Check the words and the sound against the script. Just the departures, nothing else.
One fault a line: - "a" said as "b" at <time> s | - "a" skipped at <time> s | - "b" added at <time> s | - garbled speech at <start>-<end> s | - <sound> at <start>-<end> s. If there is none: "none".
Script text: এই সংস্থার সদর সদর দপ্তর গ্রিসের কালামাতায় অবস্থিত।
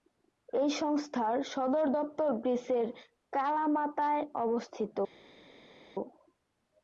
- "সদর" skipped at 1.9 s